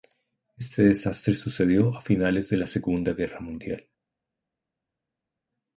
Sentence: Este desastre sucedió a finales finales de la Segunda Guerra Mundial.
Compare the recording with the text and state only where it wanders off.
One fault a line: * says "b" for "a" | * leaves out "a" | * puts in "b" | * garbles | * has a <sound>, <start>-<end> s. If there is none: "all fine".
* leaves out "finales"